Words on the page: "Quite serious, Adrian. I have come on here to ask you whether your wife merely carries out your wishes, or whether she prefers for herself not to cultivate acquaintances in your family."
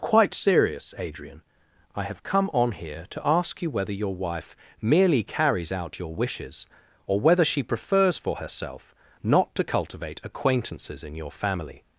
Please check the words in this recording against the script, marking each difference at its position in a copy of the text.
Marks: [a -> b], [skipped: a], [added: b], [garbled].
"Quite serious, Adrian. I have come on here to ask you whether your wife merely carries out your wishes, or whether she prefers for herself not to cultivate acquaintances in your family."